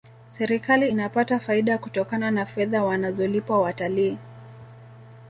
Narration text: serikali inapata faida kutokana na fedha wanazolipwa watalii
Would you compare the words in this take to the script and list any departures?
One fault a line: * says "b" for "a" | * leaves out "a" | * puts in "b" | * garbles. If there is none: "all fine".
all fine